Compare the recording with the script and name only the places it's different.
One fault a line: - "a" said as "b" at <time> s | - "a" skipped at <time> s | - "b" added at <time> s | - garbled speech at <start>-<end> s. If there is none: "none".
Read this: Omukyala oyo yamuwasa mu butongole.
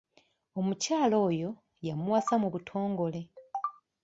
none